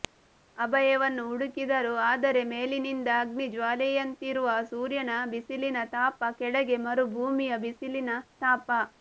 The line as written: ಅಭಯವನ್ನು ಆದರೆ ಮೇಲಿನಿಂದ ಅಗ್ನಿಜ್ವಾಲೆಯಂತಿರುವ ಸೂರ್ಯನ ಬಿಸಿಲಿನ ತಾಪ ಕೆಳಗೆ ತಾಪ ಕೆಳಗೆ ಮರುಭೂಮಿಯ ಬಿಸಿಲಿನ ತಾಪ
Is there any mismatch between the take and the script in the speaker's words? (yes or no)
yes